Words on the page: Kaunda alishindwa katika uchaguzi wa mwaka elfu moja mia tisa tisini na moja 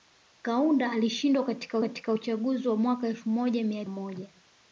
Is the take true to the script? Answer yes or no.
no